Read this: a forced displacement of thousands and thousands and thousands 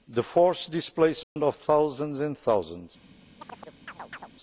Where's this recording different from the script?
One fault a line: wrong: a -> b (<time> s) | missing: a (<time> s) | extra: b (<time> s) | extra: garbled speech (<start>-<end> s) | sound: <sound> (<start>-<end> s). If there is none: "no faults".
wrong: a -> the (0.1 s)
sound: dropout (1.2-1.4 s)
missing: and thousands (2.9 s)
sound: chirp (3.4-4.3 s)